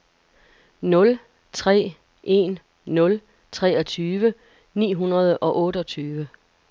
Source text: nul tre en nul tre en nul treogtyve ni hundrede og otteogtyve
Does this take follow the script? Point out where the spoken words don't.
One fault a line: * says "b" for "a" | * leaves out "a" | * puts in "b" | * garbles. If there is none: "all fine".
* leaves out "tre en nul"